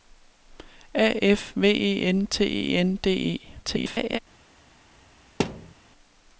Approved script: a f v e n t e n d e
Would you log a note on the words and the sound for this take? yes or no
yes